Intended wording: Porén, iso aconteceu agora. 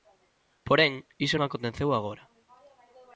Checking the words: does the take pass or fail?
pass